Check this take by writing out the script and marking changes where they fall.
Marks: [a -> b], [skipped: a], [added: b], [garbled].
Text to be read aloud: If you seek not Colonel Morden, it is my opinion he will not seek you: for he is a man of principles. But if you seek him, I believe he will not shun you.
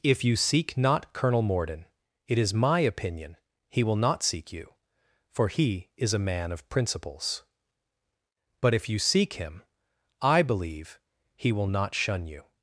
If you seek not Colonel Morden, it is my opinion he will not seek you: for he is a man of principles. But if you seek him, I believe he will not shun you.